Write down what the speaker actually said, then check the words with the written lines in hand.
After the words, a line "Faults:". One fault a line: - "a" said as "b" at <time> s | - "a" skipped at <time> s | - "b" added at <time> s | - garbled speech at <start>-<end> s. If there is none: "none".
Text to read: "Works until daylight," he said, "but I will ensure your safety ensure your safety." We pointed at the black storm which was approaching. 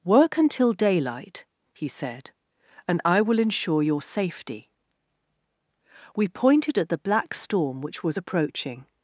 "Work until daylight," he said, "and I will ensure your safety." We pointed at the black storm which was approaching.
Faults:
- "Works" said as "Work" at 0.0 s
- "but" said as "and" at 2.9 s
- "ensure your safety" skipped at 4.7 s